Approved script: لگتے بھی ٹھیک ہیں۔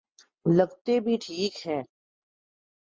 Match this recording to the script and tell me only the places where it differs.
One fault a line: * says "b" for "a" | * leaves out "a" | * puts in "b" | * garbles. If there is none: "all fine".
all fine